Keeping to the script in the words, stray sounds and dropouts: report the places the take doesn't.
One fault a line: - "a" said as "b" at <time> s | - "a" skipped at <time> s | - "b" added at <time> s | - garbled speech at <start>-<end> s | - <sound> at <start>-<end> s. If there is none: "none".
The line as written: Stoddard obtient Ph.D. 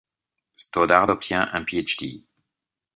- "un" added at 1.5 s